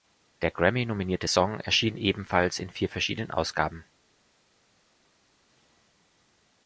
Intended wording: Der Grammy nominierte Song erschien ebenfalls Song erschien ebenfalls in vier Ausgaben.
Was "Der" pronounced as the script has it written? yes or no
yes